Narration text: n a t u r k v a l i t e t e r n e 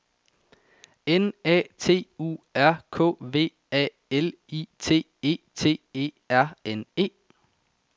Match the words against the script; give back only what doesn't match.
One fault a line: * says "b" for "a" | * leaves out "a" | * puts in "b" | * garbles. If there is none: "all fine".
all fine